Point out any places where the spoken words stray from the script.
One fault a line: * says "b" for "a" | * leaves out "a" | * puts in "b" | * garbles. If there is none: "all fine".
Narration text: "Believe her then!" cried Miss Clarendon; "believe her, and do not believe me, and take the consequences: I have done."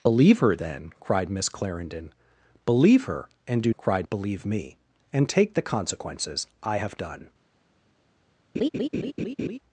* says "cried" for "not"